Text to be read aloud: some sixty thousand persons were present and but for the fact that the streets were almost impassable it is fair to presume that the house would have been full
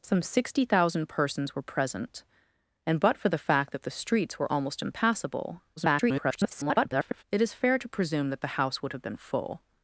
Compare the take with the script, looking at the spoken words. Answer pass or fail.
fail